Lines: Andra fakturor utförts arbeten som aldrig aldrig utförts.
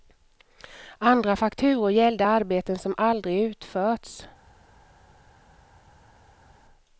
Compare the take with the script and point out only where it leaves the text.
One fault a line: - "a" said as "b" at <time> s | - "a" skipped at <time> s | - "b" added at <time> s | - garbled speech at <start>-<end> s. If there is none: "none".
- "utförts" said as "gällde" at 1.9 s
- "aldrig" skipped at 3.4 s